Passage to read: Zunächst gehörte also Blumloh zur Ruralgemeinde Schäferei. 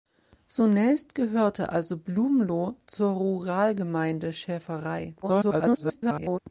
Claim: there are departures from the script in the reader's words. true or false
true